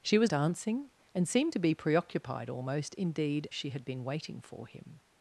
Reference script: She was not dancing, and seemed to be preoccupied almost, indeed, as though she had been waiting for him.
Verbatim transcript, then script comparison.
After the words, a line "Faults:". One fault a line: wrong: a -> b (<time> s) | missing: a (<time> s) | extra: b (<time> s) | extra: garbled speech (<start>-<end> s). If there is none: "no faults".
She was dancing, and seemed to be preoccupied almost, indeed, she had been waiting for him.
Faults:
missing: not (0.3 s)
missing: as though (3.5 s)